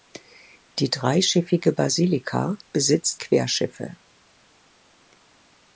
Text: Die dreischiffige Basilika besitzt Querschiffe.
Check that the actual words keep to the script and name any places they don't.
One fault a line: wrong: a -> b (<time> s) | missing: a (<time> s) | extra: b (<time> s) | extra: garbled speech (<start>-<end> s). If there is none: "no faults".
no faults